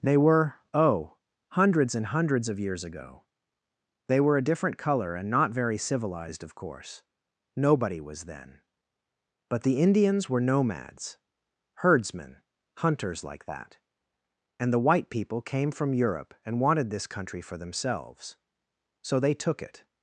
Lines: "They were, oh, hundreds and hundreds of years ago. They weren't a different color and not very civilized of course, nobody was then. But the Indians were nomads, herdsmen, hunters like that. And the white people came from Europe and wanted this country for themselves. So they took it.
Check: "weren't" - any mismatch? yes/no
yes